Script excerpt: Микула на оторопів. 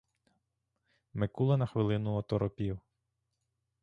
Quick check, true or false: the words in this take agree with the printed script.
false